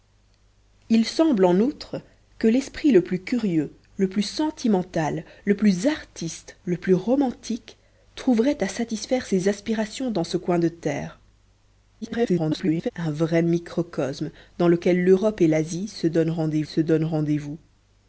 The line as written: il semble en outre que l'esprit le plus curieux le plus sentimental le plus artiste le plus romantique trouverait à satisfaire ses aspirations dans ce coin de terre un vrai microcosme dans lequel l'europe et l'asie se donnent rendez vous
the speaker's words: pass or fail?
fail